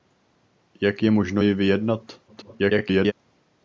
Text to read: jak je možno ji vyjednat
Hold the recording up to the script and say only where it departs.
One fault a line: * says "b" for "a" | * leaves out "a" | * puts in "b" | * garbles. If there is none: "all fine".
* garbles